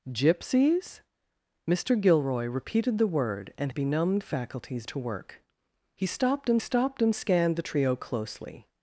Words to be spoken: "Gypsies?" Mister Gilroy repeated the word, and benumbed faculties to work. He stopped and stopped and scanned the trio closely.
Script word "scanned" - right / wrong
right